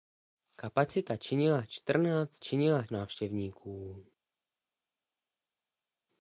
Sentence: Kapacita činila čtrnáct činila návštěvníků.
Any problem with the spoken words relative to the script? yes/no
no